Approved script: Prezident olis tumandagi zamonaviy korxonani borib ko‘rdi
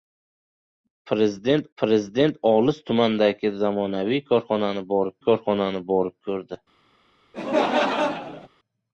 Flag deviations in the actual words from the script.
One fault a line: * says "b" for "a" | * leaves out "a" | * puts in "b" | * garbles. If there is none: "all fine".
* puts in "prezident"
* puts in "korxonani borib"